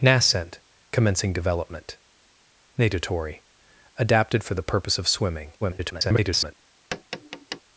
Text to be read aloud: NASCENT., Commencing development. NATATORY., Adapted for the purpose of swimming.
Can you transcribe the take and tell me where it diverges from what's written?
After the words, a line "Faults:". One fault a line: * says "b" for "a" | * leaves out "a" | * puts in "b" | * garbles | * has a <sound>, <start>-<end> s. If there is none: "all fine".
NASCENT., Commencing development. NATATORY., Adapted for the purpose of swimming. [garbled]
Faults:
* garbles
* has a tap, 6.9-7.6 s